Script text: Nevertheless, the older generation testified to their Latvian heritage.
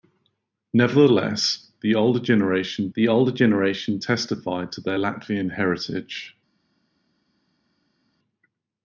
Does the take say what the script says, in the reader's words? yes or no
no